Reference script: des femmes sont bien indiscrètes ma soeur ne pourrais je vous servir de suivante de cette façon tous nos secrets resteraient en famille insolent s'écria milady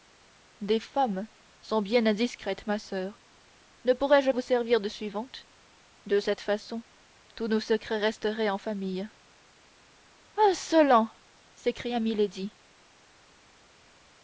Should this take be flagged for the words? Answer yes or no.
no